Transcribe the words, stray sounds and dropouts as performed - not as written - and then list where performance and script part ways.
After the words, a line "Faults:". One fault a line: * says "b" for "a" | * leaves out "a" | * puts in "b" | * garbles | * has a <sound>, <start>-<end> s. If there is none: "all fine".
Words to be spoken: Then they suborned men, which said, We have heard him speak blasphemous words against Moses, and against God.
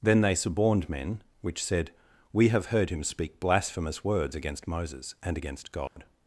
Then they suborned men, which said, We have heard him speak blasphemous words against Moses, and against God.
Faults:
* has a dropout, 5.9-6.0 s